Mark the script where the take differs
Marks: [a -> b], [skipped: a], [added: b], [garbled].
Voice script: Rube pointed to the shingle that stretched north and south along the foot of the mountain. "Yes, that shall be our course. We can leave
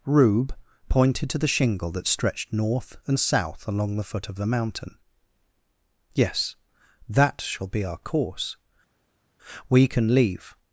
Rube pointed to the shingle that stretched north and south along the foot of the mountain. "Yes, that shall be our course. We can leave